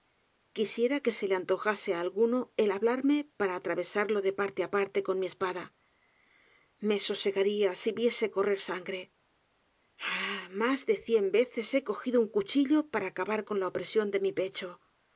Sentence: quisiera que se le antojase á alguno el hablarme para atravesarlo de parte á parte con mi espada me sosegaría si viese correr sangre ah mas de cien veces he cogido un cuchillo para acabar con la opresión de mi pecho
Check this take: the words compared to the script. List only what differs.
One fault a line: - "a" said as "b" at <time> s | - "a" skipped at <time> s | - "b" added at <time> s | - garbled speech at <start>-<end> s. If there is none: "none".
none